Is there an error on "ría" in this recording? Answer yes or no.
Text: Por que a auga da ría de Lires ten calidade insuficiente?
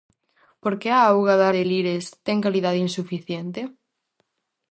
yes